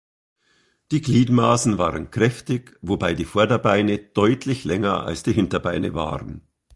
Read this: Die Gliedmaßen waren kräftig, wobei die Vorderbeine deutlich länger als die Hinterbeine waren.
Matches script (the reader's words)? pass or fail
pass